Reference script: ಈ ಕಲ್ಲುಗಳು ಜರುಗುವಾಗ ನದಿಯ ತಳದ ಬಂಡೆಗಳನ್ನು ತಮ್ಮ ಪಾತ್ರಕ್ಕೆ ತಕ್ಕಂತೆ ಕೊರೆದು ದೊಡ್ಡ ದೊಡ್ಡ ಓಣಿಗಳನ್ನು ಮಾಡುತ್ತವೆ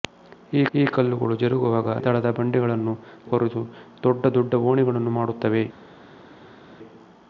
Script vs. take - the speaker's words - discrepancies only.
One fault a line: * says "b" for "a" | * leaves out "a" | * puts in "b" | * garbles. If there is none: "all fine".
* puts in "ಈ"
* leaves out "ನದಿಯ"
* leaves out "ತಮ್ಮ ಪಾತ್ರಕ್ಕೆ ತಕ್ಕಂತೆ"